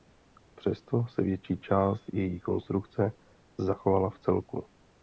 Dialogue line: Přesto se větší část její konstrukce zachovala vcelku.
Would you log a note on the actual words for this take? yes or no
no